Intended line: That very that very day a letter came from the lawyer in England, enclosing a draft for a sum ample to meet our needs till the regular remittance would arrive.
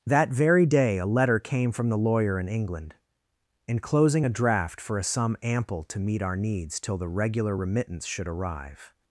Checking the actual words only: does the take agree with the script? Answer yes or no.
no